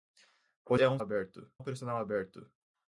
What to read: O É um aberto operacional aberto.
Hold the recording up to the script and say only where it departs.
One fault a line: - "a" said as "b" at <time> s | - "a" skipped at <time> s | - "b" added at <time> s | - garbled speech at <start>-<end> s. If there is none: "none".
none